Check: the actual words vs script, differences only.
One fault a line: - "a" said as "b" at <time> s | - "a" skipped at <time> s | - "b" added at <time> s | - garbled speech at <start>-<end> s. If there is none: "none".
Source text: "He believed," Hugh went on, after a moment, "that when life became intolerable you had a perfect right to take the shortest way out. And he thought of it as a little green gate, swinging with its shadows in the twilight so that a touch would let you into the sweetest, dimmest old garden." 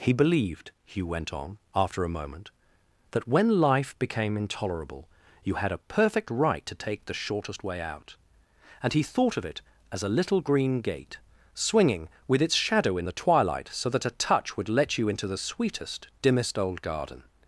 - "shadows" said as "shadow" at 12.6 s